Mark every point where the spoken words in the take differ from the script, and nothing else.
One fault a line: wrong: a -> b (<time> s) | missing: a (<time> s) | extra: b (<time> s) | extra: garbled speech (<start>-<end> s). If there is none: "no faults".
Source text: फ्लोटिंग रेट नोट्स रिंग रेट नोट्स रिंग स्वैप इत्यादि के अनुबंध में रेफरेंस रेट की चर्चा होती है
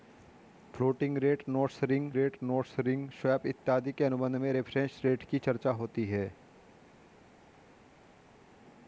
no faults